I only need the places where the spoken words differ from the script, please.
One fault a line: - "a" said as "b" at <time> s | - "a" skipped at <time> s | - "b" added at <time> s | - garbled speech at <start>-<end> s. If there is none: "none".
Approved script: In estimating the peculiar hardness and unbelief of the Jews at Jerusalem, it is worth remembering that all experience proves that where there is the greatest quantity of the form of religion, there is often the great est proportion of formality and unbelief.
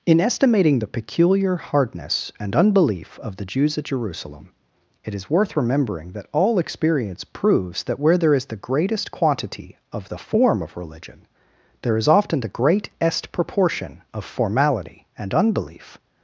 none